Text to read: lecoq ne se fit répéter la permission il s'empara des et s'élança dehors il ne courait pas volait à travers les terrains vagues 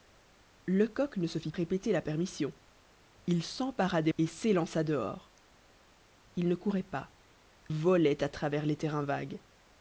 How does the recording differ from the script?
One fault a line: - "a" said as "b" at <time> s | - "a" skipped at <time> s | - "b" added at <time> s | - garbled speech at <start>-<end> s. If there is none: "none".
none